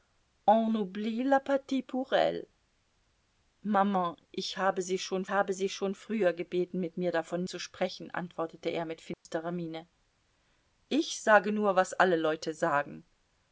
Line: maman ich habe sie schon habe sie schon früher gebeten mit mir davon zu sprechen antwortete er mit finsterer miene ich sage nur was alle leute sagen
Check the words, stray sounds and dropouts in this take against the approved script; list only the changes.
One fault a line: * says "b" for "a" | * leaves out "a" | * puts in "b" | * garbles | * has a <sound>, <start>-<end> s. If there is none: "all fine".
* has a dropout, 9.1-9.3 s